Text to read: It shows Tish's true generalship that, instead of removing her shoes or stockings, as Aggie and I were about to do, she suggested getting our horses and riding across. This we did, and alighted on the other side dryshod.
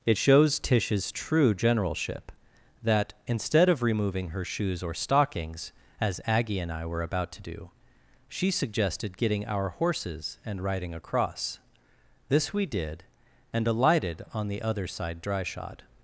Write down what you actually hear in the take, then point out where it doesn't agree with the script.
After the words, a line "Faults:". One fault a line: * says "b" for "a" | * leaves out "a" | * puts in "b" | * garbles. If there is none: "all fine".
It shows Tish's true generalship that, instead of removing her shoes or stockings, as Aggie and I were about to do, she suggested getting our horses and riding across. This we did, and alighted on the other side dryshod.
Faults:
all fine